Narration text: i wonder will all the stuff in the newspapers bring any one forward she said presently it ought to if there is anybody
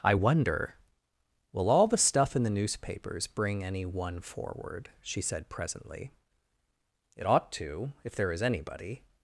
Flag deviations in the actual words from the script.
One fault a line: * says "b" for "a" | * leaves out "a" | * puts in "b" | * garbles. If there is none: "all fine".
all fine